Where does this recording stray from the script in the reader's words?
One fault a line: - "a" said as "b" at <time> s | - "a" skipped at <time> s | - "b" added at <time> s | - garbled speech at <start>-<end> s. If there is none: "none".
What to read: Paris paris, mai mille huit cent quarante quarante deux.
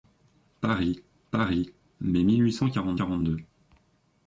none